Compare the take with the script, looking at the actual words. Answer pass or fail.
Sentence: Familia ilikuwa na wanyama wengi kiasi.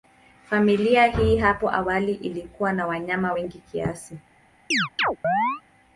fail